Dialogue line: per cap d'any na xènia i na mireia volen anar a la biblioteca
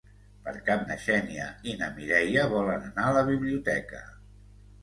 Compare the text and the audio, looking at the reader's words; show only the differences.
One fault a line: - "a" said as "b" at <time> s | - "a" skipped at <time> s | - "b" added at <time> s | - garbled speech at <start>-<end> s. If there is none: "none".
- "d'any" skipped at 0.8 s